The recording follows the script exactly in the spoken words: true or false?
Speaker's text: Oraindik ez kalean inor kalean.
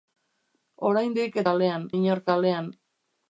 true